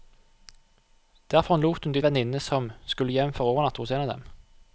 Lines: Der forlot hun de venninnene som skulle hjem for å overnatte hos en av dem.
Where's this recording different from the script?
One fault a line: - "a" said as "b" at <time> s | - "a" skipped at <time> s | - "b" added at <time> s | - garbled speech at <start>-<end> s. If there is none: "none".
none